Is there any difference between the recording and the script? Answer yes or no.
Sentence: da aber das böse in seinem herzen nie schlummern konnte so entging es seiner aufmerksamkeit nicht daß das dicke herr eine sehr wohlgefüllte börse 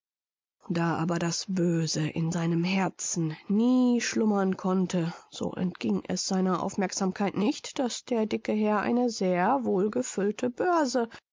yes